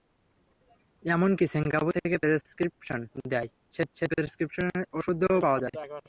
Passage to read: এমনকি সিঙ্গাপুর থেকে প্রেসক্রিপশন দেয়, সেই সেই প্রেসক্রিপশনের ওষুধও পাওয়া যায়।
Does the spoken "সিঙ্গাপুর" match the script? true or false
true